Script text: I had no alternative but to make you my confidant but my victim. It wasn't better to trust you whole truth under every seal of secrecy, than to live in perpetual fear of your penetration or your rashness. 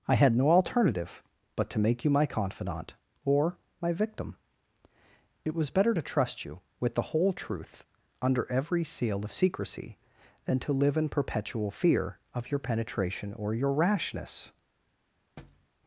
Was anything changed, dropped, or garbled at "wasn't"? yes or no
yes